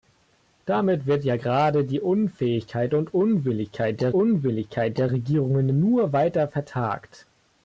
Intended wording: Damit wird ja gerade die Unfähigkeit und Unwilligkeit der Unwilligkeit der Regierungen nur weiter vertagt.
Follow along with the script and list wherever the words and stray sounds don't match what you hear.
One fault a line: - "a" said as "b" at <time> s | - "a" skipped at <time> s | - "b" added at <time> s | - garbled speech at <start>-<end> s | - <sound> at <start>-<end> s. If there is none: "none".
none